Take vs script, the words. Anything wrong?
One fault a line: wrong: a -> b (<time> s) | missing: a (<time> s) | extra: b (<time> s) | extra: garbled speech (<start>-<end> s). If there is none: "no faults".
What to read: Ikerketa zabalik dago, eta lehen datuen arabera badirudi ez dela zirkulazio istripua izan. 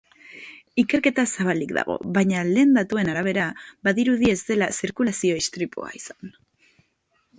wrong: eta -> baina (2.1 s)